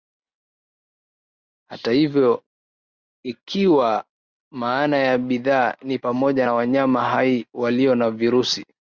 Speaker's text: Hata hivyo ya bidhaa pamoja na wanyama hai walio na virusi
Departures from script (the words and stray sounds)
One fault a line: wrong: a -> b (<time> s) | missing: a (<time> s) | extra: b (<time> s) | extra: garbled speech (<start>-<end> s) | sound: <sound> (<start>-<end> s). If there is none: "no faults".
extra: ikiwa maana (3.2 s)
extra: ni (5.8 s)